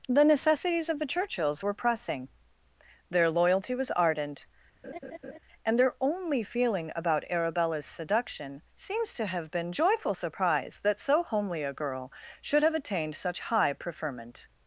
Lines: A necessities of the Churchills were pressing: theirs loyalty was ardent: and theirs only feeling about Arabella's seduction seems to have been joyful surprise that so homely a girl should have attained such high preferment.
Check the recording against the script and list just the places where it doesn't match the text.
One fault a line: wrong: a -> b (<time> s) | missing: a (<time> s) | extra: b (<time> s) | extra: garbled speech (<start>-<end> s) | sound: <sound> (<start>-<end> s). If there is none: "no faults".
wrong: A -> The (0.1 s)
wrong: theirs -> their (3.1 s)
sound: laugh (4.8-5.4 s)
wrong: theirs -> their (5.8 s)